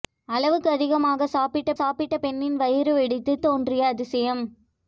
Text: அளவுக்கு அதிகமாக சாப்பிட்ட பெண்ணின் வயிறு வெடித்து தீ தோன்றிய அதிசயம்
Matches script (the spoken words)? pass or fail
fail